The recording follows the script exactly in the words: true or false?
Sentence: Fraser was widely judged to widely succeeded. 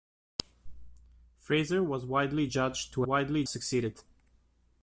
true